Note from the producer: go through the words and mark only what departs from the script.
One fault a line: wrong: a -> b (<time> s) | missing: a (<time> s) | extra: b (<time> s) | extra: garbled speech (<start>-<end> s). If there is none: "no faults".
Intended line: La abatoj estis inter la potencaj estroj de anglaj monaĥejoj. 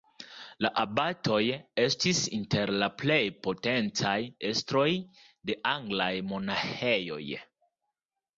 extra: plej (3.0 s)